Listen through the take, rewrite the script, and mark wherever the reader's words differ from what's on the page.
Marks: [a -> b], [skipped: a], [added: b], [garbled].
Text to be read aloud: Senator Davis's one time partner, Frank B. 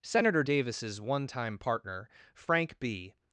Senator Davis's one time partner, Frank B.